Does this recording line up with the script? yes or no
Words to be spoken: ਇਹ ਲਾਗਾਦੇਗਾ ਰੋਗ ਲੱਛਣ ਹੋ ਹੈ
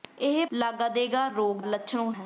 yes